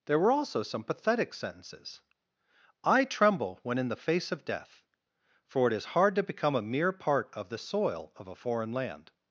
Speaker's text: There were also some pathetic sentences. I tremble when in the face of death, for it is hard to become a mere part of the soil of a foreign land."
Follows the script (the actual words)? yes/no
yes